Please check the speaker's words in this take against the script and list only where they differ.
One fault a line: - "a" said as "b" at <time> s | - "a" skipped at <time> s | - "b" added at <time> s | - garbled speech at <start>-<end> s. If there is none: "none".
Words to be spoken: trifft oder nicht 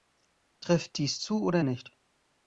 - "dies zu" added at 1.0 s